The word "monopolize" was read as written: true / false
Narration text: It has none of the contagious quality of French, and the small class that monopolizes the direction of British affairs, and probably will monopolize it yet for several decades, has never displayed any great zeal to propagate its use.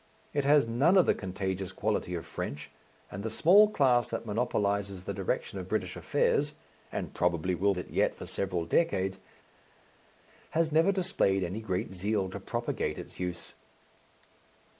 false